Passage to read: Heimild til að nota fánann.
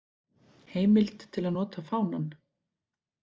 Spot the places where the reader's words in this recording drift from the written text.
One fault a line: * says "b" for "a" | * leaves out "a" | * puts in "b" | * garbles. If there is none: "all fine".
all fine